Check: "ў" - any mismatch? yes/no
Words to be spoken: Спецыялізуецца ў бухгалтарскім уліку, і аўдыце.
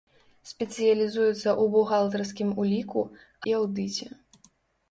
no